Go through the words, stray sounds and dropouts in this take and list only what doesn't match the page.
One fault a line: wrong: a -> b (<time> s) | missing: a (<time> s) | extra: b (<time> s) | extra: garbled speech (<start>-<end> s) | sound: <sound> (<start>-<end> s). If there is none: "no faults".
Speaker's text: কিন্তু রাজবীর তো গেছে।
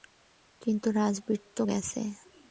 no faults